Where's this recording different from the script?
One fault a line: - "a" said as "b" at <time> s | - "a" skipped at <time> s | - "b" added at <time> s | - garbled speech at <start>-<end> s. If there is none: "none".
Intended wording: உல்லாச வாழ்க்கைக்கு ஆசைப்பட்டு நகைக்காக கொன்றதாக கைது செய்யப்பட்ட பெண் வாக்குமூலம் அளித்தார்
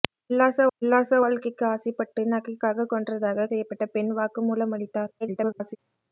- "உல்லாச" added at 0.8 s
- "கைது" skipped at 3.5 s
- garbled speech at 5.2-5.8 s